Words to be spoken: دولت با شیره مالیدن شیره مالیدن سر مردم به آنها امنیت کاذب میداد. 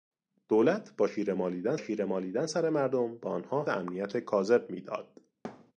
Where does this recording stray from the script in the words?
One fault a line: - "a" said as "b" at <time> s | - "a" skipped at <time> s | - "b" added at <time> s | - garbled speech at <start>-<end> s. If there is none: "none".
none